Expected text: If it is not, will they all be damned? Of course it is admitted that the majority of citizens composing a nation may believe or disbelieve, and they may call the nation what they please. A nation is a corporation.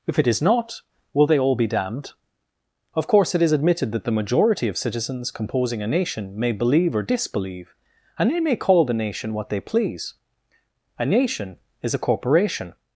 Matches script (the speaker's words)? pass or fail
pass